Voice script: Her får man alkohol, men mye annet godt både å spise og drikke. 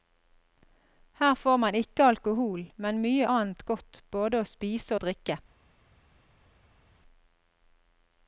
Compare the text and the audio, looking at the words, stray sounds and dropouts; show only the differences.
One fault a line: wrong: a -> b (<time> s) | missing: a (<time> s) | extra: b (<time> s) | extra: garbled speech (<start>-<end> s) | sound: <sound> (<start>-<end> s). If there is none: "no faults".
extra: ikke (1.8 s)